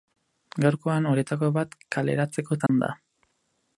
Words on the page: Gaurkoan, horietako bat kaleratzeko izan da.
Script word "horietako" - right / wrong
right